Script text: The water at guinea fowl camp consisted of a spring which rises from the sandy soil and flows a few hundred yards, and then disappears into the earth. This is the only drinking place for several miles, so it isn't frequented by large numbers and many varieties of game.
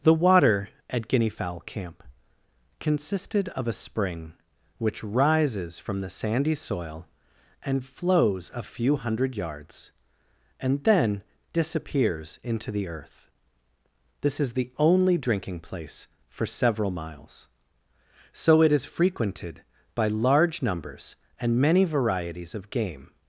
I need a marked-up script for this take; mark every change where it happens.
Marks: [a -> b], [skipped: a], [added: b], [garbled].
The water at guinea fowl camp consisted of a spring which rises from the sandy soil and flows a few hundred yards, and then disappears into the earth. This is the only drinking place for several miles, so it [isn't -> is] frequented by large numbers and many varieties of game.